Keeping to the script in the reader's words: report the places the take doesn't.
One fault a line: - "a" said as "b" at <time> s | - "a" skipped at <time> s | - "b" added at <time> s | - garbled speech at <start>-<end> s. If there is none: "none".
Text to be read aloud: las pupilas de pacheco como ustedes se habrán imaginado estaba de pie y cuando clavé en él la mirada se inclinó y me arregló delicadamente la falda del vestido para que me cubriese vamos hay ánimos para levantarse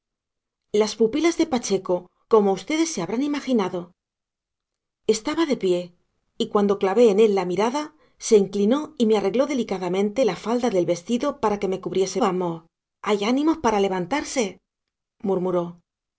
none